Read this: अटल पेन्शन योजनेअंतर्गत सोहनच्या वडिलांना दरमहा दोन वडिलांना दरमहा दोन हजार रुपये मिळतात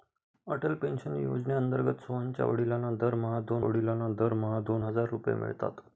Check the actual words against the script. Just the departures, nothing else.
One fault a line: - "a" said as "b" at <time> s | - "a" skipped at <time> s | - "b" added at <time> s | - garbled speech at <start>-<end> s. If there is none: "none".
none